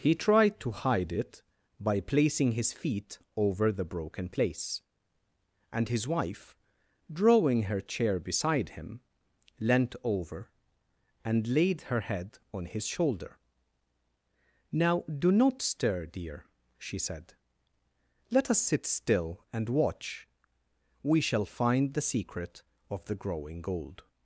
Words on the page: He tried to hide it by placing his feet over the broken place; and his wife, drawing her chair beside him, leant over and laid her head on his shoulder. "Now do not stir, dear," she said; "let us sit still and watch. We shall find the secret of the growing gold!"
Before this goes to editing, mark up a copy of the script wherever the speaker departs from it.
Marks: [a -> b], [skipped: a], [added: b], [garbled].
He tried to hide it by placing his feet over the broken place; and his wife, drawing her chair beside him, leant over and laid her head on his shoulder. "Now do not stir, dear," she said; "let us sit still and watch. We shall find the secret of the growing gold!"